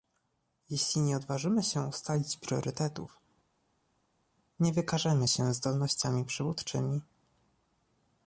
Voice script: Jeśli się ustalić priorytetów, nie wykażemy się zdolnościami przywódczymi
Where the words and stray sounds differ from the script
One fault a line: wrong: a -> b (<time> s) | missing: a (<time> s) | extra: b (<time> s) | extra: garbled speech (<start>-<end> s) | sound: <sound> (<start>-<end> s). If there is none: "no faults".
extra: nie odważymy (1.0 s)